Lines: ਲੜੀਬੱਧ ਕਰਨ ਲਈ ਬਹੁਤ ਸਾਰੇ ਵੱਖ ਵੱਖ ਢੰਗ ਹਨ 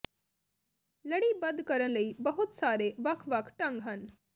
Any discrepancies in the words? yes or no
no